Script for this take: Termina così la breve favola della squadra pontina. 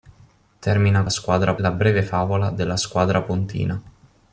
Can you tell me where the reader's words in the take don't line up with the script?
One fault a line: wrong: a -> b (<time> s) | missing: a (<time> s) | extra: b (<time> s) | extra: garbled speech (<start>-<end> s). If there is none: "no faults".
wrong: così -> squadra (1.1 s)